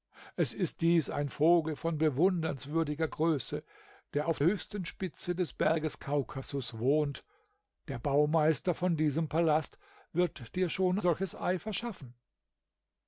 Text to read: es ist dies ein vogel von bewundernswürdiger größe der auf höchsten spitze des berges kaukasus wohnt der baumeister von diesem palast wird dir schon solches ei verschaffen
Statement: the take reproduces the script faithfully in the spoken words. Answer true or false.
true